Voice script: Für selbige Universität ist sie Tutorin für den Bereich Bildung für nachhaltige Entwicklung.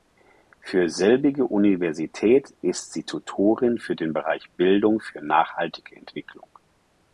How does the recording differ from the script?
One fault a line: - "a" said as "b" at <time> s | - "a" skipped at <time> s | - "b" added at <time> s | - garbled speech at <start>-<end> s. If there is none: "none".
none